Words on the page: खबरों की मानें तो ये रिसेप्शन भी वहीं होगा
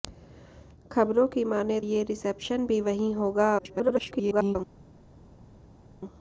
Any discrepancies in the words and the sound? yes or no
yes